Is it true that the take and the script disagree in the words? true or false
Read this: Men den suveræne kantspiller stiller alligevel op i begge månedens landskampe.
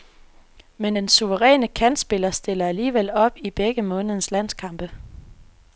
false